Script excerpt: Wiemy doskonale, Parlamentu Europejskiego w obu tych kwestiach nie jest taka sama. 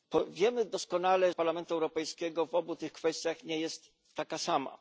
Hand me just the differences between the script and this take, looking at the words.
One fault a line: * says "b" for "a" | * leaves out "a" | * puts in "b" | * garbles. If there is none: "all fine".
all fine